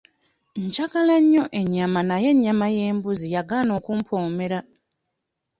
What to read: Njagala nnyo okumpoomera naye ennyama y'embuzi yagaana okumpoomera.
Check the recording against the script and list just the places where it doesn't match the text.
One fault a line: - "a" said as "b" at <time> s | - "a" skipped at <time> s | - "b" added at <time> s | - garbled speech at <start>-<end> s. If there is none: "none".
- "okumpoomera" said as "ennyama" at 1.6 s